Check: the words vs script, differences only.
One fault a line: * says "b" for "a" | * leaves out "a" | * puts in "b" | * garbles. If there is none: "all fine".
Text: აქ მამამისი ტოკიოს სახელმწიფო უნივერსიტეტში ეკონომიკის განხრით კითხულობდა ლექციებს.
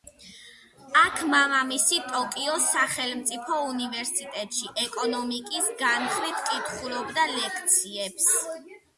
all fine